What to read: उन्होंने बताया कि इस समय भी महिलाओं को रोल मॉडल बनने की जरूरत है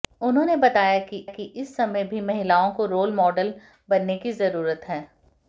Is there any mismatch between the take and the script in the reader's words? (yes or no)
yes